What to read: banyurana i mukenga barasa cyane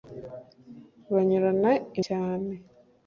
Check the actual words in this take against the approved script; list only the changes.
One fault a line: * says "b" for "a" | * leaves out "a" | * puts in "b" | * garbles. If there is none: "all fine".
* leaves out "mukenga barasa"